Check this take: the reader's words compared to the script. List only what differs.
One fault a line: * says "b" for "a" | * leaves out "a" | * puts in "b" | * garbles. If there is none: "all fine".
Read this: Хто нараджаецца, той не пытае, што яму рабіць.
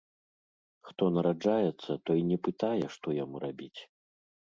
all fine